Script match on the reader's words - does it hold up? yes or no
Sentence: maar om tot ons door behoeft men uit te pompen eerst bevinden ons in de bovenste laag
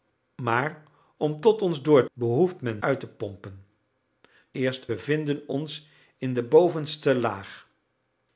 yes